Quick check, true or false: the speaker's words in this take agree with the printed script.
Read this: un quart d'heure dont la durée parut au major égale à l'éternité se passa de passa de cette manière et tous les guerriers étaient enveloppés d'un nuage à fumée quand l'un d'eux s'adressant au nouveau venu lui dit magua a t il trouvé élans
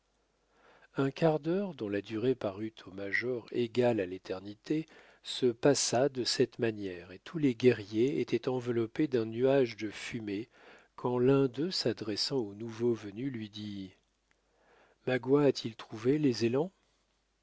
false